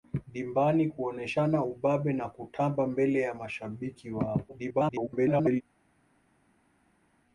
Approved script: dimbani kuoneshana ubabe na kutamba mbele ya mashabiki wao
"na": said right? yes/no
yes